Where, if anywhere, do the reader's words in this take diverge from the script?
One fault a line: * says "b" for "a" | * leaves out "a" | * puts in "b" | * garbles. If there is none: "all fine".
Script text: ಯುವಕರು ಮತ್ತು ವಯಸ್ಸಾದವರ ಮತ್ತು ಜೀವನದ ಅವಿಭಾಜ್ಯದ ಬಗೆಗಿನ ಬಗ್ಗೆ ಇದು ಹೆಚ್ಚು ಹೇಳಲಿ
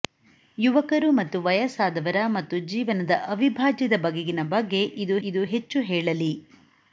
* puts in "ಇದು"